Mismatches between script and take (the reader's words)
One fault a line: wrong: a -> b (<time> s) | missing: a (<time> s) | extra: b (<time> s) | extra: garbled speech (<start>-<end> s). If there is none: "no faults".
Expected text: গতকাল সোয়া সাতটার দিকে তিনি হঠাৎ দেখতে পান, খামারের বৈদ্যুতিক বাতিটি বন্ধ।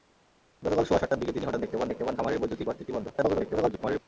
extra: দেখতে পান (1.9 s)
extra: garbled speech (3.1-4.0 s)